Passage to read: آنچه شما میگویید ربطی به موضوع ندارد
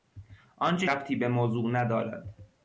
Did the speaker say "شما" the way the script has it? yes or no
no